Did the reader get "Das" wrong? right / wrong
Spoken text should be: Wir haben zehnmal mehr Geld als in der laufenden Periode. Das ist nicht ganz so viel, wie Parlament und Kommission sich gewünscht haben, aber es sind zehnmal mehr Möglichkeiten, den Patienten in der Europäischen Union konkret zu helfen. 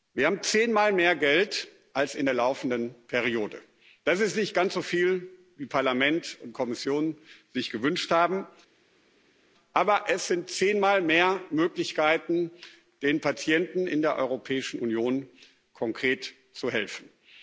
right